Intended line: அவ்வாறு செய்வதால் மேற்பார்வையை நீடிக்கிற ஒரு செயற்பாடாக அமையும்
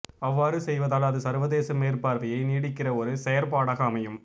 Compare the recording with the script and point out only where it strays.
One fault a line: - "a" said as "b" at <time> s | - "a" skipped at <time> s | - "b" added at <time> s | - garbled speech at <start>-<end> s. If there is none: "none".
- "அது சர்வதேச" added at 1.1 s